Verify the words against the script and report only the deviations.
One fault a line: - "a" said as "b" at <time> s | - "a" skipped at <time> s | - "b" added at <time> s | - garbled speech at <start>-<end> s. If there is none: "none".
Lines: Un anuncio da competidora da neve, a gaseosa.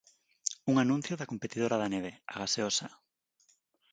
none